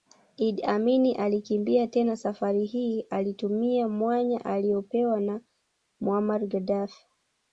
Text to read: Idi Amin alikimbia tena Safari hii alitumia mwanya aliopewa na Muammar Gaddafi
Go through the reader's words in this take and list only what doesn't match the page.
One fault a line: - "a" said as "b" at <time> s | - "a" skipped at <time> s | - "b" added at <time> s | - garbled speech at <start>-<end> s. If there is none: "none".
none